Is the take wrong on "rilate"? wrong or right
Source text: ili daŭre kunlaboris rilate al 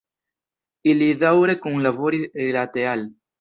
right